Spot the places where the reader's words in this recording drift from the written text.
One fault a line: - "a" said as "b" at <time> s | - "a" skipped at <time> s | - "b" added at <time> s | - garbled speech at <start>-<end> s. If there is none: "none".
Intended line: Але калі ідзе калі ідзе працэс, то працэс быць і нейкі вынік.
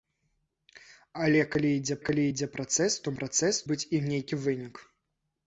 none